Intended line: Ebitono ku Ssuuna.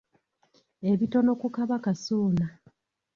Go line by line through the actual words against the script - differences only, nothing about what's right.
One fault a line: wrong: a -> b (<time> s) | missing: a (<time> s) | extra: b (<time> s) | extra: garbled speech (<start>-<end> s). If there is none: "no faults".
extra: Kabaka (1.6 s)